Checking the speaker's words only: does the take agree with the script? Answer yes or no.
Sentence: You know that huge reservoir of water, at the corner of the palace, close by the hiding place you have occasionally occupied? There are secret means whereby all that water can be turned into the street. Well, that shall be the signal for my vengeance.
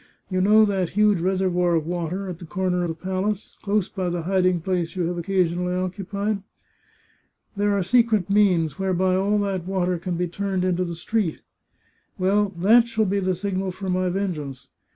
no